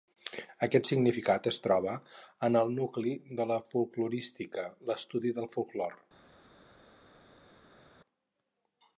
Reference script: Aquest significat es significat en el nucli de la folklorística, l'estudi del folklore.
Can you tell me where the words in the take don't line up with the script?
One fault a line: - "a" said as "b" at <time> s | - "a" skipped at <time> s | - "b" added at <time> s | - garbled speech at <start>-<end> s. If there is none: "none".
- "significat" said as "troba" at 1.6 s